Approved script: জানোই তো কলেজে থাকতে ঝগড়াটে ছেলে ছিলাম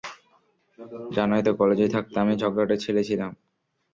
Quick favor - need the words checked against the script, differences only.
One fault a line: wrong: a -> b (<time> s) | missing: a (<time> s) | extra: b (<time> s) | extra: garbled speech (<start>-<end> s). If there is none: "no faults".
extra: আমি (2.2 s)